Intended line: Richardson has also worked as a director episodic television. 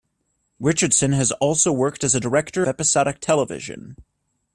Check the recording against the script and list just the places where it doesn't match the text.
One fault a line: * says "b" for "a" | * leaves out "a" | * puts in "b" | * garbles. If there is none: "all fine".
all fine